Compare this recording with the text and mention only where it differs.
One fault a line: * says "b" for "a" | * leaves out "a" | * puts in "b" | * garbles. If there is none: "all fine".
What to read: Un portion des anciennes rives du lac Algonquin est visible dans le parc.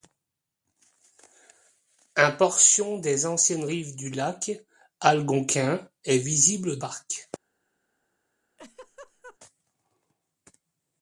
* leaves out "dans le"